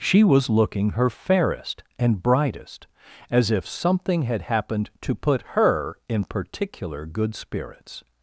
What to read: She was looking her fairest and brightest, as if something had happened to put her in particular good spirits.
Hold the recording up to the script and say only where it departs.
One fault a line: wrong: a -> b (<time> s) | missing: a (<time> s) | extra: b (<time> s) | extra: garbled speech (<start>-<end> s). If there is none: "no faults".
no faults